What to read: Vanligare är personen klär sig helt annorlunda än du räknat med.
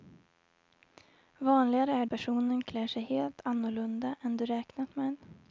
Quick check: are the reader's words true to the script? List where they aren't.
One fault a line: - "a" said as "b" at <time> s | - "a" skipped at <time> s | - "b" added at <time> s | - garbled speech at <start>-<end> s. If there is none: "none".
none